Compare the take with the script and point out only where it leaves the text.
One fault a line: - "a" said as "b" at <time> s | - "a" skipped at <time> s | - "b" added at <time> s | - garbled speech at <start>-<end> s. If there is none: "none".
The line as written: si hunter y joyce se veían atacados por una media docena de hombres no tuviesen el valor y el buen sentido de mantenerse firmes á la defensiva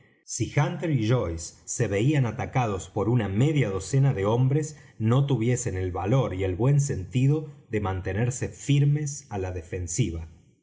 none